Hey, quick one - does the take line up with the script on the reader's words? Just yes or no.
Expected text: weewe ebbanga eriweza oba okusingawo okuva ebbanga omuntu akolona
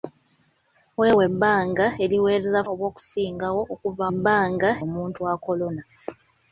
yes